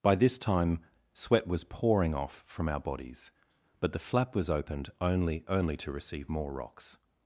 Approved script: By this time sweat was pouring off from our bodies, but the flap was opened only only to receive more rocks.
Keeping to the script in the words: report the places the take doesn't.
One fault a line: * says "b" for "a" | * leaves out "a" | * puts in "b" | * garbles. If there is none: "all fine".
all fine